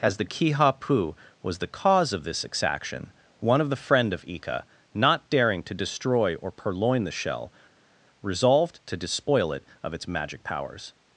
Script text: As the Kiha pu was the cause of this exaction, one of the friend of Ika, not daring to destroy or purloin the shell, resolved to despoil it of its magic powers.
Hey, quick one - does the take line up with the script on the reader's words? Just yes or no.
yes